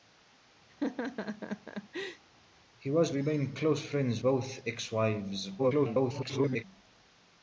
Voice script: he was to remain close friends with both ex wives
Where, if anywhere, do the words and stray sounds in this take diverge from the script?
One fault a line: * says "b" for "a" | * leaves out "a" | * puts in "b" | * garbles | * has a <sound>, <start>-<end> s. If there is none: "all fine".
* has a laugh, 0.7-2.2 s
* leaves out "to"
* leaves out "with"
* garbles